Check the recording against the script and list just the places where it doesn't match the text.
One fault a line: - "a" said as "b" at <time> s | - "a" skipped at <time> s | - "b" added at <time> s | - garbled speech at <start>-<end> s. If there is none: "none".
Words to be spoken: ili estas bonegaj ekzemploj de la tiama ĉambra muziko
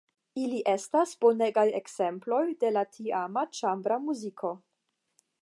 none